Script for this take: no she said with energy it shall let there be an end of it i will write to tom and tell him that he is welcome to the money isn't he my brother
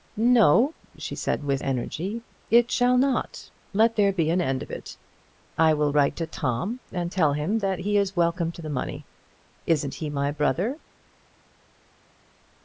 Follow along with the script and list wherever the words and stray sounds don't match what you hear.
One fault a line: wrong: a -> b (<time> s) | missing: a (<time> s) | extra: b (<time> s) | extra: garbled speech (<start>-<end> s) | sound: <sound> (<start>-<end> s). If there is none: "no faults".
extra: not (3.0 s)